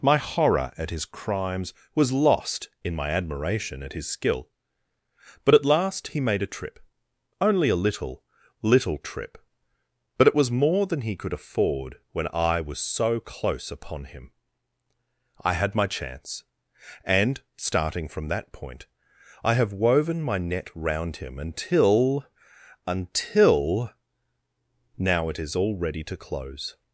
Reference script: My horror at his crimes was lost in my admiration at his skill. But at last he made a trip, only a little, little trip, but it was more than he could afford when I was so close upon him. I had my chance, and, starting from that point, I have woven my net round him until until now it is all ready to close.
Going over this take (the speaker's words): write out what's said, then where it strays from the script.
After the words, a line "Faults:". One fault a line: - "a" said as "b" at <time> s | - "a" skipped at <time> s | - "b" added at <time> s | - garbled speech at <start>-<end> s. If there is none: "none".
My horror at his crimes was lost in my admiration at his skill. But at last he made a trip, only a little, little trip, but it was more than he could afford when I was so close upon him. I had my chance, and, starting from that point, I have woven my net round him until until now it is all ready to close.
Faults:
none